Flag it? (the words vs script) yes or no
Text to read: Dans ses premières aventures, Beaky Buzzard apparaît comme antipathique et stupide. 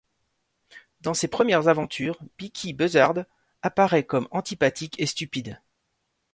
no